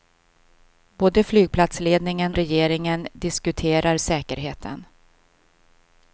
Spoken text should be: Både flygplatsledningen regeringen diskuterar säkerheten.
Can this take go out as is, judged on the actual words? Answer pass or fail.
pass